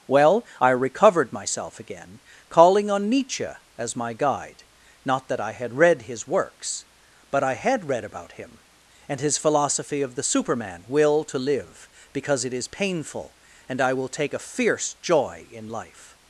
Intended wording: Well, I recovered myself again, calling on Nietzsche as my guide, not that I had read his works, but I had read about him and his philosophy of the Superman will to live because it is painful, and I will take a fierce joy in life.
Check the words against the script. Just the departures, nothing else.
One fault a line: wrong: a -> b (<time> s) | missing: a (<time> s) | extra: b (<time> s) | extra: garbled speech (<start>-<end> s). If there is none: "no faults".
no faults